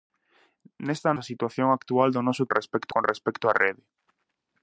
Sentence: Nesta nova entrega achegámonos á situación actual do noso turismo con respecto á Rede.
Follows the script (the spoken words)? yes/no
no